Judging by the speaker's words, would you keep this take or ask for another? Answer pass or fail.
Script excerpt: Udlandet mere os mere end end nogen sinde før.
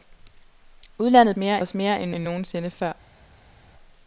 pass